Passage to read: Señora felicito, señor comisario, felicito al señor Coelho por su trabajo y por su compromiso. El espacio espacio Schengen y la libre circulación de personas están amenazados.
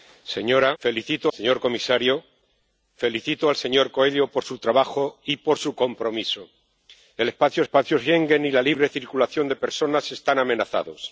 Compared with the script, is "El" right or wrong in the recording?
right